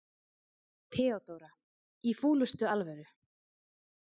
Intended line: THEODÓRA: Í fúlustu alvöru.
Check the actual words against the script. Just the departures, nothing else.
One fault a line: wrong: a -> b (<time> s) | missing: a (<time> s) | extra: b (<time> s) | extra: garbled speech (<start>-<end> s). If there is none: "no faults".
no faults